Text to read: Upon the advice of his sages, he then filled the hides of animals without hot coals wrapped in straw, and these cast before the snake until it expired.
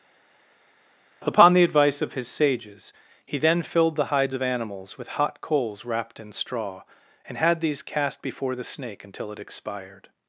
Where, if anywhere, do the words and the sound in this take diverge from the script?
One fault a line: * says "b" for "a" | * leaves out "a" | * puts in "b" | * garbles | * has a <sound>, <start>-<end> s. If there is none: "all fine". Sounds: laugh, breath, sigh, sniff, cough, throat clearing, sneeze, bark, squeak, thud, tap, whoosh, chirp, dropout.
* says "with" for "without"
* puts in "had"